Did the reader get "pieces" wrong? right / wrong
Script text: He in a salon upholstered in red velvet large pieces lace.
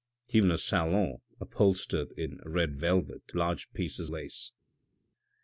right